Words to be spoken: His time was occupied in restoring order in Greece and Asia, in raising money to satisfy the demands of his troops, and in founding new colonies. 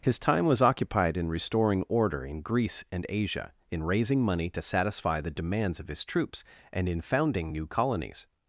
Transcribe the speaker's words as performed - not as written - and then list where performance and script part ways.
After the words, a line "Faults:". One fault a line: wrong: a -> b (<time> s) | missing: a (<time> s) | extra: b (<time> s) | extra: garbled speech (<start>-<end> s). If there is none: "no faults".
His time was occupied in restoring order in Greece and Asia, in raising money to satisfy the demands of his troops, and in founding new colonies.
Faults:
no faults